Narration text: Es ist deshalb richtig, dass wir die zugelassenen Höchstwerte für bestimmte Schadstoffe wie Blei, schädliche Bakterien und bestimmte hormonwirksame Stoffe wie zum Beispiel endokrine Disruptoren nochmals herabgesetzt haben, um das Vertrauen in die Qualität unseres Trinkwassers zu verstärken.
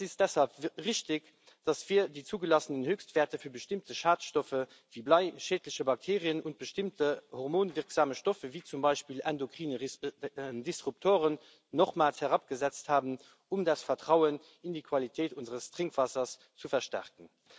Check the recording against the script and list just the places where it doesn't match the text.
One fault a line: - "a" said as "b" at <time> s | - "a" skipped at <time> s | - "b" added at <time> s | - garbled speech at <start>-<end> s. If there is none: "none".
none